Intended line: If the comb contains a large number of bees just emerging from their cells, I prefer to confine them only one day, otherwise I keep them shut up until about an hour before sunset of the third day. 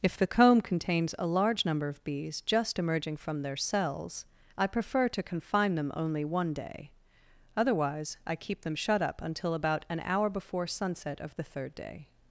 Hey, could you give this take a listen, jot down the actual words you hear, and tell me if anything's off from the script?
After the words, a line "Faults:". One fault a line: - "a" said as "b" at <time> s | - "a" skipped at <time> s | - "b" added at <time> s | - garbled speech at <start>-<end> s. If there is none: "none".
If the comb contains a large number of bees just emerging from their cells, I prefer to confine them only one day, otherwise I keep them shut up until about an hour before sunset of the third day.
Faults:
none